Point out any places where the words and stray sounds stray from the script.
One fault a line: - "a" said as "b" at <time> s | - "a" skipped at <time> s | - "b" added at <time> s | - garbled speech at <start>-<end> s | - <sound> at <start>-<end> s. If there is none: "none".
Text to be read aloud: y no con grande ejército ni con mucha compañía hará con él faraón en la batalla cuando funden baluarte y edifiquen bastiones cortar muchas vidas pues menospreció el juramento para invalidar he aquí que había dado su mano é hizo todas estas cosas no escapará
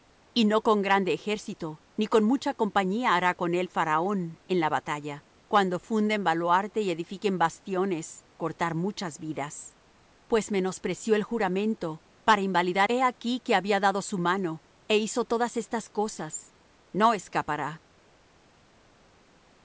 none